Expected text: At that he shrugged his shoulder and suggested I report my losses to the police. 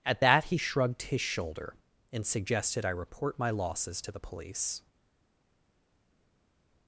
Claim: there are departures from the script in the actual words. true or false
false